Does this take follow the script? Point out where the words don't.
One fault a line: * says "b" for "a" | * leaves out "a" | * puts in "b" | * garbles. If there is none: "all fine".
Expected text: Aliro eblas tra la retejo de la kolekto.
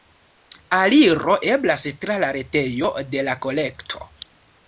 all fine